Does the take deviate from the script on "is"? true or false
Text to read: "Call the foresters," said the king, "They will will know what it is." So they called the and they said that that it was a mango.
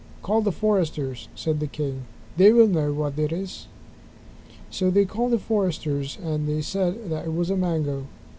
false